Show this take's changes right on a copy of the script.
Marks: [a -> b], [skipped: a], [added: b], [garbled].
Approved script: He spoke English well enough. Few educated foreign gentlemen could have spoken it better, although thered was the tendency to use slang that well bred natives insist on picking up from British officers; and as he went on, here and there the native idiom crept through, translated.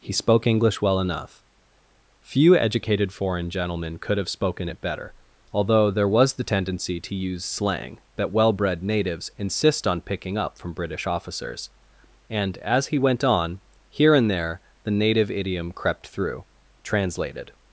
He spoke English well enough. Few educated foreign gentlemen could have spoken it better, although [thered -> there] was the tendency to use slang that well bred natives insist on picking up from British officers; and as he went on, here and there the native idiom crept through, translated.